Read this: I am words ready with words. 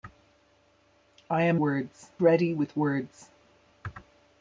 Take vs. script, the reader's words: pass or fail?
pass